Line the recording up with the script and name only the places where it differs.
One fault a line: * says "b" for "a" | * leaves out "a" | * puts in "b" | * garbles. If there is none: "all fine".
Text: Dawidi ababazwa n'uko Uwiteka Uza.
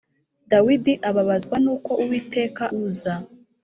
all fine